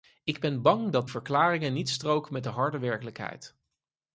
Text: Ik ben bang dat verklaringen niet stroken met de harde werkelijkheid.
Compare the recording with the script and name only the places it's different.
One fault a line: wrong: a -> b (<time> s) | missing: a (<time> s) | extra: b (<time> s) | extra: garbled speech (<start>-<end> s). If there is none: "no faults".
no faults